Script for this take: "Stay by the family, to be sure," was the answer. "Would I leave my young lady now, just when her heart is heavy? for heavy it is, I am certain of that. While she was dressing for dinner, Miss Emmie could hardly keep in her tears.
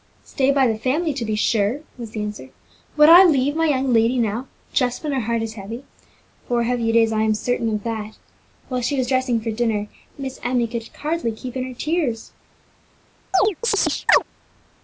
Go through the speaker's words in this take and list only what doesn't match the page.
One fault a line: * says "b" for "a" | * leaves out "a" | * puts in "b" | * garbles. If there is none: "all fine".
all fine